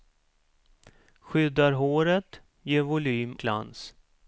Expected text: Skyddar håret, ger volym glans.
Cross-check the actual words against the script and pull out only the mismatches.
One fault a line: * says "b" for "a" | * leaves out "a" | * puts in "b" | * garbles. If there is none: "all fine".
all fine